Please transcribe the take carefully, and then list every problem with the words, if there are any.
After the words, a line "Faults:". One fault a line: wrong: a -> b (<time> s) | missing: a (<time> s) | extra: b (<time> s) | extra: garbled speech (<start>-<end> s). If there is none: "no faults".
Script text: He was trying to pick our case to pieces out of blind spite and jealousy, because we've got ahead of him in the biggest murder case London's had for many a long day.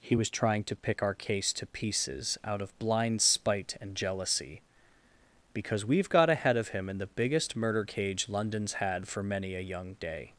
He was trying to pick our case to pieces out of blind spite and jealousy, because we've got ahead of him in the biggest murder cage London's had for many a young day.
Faults:
wrong: case -> cage (7.8 s)
wrong: long -> young (9.6 s)